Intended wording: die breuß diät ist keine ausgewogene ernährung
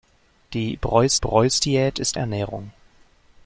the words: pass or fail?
fail